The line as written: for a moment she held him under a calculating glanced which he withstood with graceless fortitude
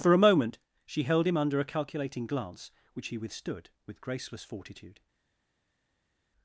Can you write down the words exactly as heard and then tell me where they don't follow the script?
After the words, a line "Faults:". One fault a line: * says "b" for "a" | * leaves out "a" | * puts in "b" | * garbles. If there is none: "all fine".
for a moment she held him under a calculating glance which he withstood with graceless fortitude
Faults:
* says "glance" for "glanced"